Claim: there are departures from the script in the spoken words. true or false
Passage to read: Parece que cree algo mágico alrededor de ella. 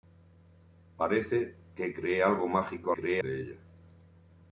true